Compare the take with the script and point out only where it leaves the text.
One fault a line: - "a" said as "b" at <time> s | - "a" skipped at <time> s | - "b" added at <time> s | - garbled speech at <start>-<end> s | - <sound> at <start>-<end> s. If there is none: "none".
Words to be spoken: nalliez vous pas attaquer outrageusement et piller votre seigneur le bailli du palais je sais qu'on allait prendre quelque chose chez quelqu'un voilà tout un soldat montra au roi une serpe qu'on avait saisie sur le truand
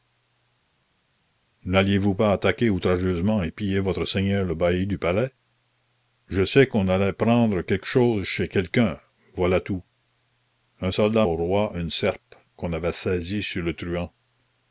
- "montra" skipped at 11.3 s